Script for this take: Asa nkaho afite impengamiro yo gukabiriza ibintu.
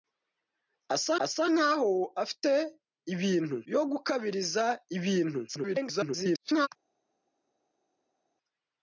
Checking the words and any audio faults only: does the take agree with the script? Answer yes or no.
no